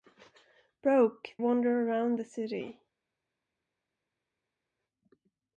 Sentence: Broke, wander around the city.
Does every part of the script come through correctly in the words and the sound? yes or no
yes